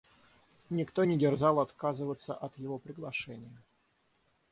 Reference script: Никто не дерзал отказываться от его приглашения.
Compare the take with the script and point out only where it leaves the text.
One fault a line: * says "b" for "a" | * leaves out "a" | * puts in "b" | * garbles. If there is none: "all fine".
all fine